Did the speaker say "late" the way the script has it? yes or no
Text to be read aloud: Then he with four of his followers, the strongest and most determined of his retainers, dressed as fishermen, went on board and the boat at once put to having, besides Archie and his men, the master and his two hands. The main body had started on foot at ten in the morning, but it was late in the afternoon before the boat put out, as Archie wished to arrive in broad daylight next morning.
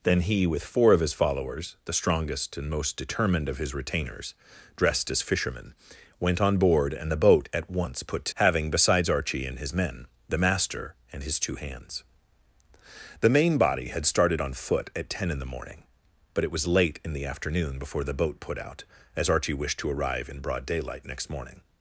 yes